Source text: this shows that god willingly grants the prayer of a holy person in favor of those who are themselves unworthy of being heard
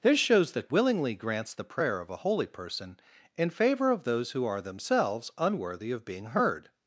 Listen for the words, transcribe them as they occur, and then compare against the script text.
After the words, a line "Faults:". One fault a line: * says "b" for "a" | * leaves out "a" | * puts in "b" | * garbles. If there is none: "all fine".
this shows that willingly grants the prayer of a holy person in favor of those who are themselves unworthy of being heard
Faults:
* leaves out "god"